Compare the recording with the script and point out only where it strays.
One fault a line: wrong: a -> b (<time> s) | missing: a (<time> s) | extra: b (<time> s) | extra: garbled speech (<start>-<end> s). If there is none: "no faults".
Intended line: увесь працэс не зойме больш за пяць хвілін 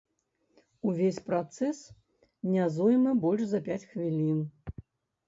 no faults